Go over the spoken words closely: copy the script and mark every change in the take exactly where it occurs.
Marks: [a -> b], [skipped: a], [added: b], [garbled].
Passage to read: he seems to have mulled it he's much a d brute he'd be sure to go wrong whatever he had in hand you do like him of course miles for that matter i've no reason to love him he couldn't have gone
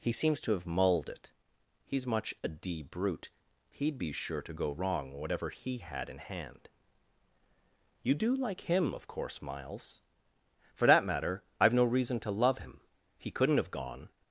he seems to have mulled it he's much a d brute he'd be sure to go wrong whatever he had in hand you do like him of course miles for that matter i've no reason to love him he couldn't have gone